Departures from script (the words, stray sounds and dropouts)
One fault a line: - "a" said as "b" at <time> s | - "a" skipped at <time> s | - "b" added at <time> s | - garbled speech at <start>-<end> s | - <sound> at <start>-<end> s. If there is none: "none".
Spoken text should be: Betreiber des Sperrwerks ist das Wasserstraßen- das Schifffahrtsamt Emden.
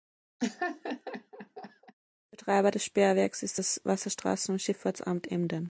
- laugh at 0.4-1.9 s
- "das" said as "und" at 4.5 s